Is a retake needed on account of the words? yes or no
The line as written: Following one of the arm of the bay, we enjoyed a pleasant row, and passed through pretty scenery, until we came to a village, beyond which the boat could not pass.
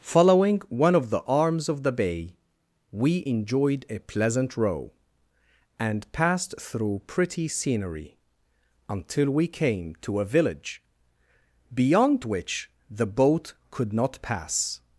yes